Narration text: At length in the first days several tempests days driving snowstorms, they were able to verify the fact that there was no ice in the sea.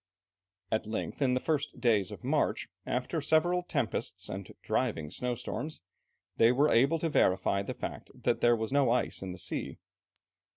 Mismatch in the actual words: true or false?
true